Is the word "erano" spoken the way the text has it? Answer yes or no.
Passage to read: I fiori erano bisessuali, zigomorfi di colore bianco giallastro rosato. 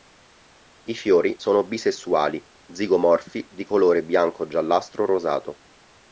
no